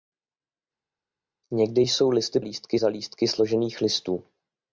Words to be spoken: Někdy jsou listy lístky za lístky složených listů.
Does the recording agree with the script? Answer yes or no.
yes